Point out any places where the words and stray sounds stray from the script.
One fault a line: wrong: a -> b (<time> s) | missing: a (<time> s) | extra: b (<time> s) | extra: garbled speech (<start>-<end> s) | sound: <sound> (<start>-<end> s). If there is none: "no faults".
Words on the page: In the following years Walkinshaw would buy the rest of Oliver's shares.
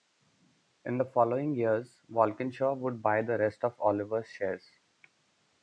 no faults